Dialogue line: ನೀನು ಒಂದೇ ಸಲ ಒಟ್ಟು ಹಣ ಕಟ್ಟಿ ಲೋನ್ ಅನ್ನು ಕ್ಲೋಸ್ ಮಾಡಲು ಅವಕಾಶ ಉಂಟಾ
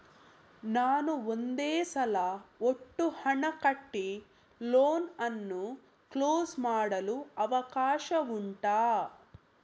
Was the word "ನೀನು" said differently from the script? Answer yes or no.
yes